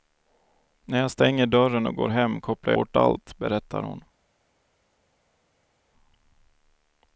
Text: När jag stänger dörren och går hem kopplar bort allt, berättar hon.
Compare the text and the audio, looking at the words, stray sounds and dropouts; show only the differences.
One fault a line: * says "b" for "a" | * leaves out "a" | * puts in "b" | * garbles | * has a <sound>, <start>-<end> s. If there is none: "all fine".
all fine